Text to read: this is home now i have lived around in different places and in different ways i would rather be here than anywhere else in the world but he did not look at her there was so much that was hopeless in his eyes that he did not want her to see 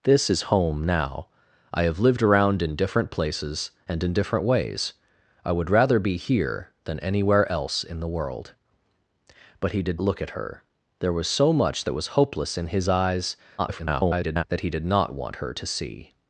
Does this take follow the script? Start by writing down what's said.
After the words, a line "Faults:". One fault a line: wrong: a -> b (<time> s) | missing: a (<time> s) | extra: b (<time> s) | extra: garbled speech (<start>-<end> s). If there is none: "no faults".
this is home now i have lived around in different places and in different ways i would rather be here than anywhere else in the world but he did look at her there was so much that was hopeless in his eyes [garbled] that he did not want her to see
Faults:
missing: not (10.0 s)
extra: garbled speech (13.6-14.4 s)